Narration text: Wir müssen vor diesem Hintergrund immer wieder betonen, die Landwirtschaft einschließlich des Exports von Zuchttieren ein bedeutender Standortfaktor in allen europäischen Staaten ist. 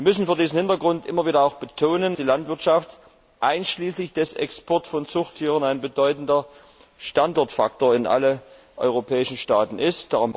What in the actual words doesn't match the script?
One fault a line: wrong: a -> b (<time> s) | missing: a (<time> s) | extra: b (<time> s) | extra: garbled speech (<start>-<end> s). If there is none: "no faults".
no faults